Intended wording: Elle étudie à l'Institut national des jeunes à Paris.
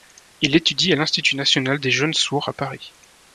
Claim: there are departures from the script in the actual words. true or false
true